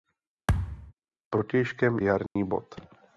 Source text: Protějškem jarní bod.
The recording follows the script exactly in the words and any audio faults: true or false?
false